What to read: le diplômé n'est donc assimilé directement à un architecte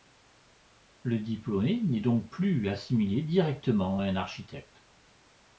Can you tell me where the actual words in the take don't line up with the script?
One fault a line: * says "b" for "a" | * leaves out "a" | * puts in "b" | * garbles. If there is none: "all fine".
* puts in "plus"